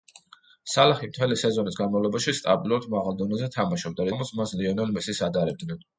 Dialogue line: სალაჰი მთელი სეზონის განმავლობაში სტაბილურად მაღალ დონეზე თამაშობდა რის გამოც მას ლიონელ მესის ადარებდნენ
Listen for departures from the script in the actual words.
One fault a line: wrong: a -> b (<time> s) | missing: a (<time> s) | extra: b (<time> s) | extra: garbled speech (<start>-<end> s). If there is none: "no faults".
missing: რის (4.1 s)